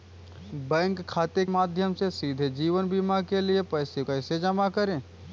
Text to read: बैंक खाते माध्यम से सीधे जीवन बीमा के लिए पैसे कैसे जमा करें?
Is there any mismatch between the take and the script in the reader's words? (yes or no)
no